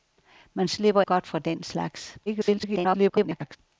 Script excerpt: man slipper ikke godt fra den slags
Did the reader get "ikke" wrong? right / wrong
wrong